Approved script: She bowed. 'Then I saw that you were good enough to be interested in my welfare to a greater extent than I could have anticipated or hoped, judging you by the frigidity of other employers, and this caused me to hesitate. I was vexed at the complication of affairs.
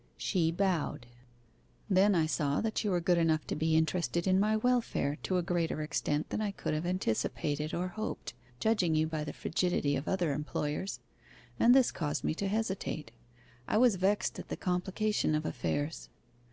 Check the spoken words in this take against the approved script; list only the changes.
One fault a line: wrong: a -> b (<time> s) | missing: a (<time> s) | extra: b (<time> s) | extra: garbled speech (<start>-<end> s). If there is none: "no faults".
no faults